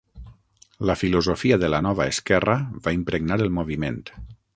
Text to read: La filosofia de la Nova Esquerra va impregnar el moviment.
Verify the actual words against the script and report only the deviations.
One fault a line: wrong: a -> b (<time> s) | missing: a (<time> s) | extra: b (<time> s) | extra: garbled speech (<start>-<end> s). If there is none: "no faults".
no faults